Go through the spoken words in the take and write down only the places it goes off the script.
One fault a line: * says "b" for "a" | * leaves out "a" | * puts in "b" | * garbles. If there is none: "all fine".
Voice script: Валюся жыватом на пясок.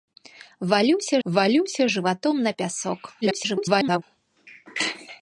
* puts in "валюся"
* garbles